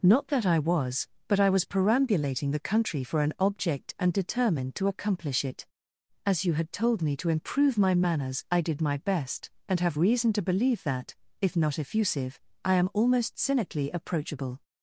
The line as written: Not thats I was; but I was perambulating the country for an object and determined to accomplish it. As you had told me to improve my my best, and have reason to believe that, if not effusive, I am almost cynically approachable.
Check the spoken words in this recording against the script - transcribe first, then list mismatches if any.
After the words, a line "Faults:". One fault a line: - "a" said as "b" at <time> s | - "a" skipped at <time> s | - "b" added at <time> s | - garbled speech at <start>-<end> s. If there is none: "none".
Not that I was; but I was perambulating the country for an object and determined to accomplish it. As you had told me to improve my manners I did my best, and have reason to believe that, if not effusive, I am almost cynically approachable.
Faults:
- "thats" said as "that" at 0.3 s
- "manners I did" added at 7.9 s